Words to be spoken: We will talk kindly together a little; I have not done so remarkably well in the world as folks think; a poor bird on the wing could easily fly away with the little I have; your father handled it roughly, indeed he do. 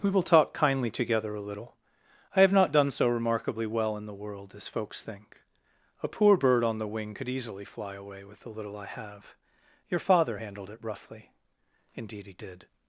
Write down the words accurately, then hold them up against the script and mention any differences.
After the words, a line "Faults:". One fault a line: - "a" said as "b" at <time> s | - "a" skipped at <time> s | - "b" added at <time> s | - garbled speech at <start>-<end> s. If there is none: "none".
We will talk kindly together a little; I have not done so remarkably well in the world as folks think; a poor bird on the wing could easily fly away with the little I have; your father handled it roughly, indeed he did.
Faults:
- "do" said as "did" at 12.3 s